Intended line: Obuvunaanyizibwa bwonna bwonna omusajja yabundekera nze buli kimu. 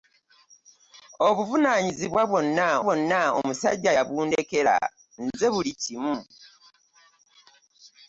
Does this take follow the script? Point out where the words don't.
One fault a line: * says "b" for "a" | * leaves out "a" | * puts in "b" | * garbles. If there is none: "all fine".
all fine